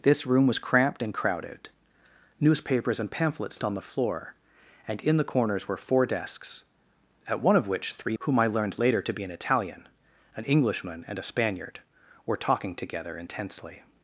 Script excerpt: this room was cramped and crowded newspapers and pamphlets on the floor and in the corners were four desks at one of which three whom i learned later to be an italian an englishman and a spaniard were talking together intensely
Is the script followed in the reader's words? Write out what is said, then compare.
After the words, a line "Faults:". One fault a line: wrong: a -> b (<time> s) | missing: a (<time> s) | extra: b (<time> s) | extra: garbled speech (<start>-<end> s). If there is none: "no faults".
this room was cramped and crowded newspapers and pamphlets on the floor and in the corners were four desks at one of which three whom i learned later to be an italian an englishman and a spaniard were talking together intensely
Faults:
no faults